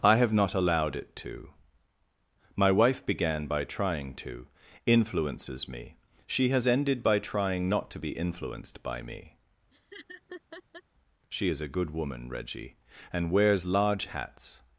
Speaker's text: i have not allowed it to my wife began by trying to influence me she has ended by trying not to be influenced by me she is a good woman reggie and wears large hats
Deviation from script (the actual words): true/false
true